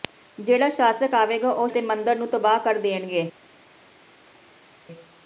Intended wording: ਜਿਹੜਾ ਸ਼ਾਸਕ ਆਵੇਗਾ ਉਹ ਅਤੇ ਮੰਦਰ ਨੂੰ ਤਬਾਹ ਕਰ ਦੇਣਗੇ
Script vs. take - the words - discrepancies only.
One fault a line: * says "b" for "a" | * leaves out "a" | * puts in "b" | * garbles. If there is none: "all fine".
all fine